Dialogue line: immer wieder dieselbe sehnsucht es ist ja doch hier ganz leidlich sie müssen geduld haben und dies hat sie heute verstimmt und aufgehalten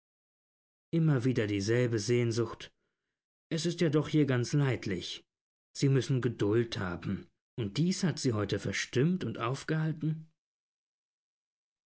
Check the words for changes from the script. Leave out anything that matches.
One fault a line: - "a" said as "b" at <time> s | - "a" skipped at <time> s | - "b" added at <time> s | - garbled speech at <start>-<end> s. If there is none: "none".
none